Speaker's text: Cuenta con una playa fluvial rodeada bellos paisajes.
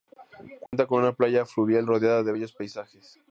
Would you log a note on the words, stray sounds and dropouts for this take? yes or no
yes